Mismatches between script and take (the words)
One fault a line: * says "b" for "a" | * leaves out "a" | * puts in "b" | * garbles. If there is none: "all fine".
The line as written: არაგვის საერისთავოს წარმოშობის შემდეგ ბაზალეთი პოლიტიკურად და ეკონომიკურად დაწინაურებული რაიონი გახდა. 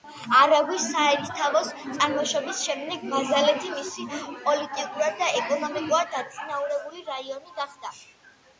* puts in "მისი"